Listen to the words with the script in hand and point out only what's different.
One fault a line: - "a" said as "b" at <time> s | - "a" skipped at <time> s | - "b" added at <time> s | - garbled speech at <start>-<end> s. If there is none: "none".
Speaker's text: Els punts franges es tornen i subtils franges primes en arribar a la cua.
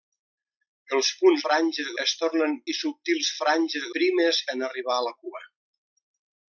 none